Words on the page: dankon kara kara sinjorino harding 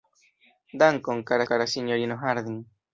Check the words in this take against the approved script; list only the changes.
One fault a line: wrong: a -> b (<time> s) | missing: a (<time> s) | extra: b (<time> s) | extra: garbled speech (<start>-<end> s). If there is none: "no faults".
no faults